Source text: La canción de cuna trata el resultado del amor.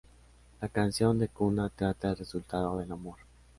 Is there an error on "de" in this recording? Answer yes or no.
no